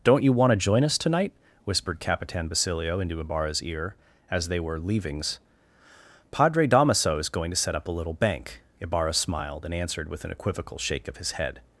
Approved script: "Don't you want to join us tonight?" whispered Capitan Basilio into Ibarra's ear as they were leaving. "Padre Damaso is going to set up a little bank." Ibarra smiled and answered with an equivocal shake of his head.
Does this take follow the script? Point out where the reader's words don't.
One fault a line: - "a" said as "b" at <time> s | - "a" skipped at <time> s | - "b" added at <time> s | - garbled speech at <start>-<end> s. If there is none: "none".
- "leaving" said as "leavings" at 4.8 s